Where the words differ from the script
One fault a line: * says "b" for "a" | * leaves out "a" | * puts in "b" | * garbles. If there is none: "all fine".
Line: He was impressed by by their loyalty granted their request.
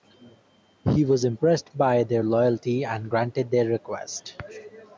* leaves out "by"
* puts in "and"